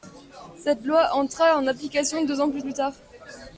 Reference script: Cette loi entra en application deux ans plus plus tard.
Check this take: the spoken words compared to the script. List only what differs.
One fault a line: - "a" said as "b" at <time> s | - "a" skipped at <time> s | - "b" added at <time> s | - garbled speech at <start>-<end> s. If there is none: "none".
none